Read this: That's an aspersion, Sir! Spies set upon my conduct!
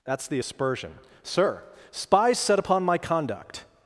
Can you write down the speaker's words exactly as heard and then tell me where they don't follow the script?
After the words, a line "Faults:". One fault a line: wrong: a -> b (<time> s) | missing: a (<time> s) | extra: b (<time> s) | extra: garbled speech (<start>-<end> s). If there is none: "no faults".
That's the aspersion, Sir! Spies set upon my conduct!
Faults:
wrong: an -> the (0.3 s)